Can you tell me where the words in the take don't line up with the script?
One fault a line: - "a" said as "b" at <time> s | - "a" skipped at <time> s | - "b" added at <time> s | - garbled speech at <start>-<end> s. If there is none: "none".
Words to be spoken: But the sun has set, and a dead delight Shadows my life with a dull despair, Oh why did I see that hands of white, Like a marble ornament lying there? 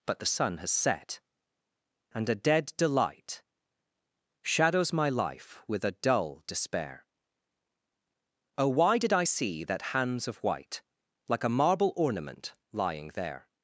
none